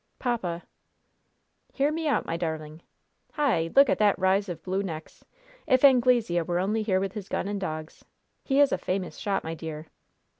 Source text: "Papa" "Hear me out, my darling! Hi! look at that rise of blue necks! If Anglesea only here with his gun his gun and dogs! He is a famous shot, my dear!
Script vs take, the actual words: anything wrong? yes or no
yes